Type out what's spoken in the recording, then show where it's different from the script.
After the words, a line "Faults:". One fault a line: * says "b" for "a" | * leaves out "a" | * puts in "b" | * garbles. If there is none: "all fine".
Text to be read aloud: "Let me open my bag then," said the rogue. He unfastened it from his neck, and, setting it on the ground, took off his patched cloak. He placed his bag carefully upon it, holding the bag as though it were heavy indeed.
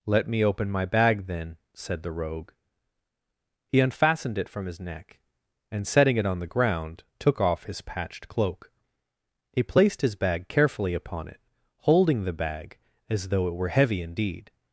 "Let me open my bag then," said the rogue. He unfastened it from his neck, and, setting it on the ground, took off his patched cloak. He placed his bag carefully upon it, holding the bag as though it were heavy indeed.
Faults:
all fine